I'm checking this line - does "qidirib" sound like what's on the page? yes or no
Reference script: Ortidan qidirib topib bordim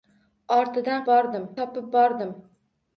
no